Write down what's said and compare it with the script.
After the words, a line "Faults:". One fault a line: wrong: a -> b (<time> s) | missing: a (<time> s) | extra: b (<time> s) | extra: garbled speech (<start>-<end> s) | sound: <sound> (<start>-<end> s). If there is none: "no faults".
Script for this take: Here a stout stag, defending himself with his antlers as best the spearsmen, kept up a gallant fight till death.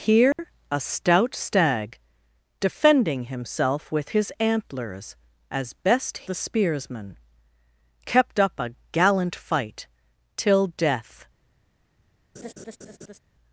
Here a stout stag, defending himself with his antlers as best the spearsmen, kept up a gallant fight till death.
Faults:
sound: dropout (0.3-0.4 s)
sound: laugh (12.3-13.2 s)